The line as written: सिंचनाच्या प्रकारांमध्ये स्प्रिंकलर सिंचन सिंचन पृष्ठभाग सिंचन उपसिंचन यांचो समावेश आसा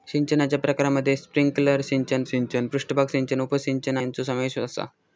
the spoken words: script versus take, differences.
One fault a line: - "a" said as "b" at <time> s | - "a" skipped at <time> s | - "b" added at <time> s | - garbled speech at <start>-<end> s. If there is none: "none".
none